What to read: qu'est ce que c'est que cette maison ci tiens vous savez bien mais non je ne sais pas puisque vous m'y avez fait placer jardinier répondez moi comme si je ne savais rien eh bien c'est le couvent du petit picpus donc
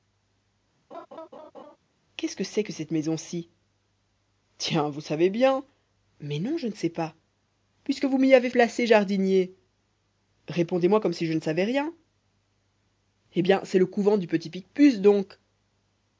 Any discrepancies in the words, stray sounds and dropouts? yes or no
yes